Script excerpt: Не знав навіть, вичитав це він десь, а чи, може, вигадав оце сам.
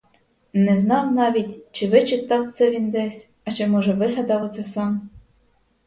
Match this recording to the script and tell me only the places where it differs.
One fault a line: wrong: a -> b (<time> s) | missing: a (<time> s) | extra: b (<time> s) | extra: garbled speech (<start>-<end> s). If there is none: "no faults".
extra: чи (1.7 s)